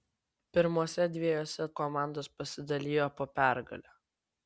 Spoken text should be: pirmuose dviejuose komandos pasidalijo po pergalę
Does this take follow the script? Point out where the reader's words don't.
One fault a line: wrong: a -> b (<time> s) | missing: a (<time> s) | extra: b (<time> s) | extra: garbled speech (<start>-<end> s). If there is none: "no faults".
no faults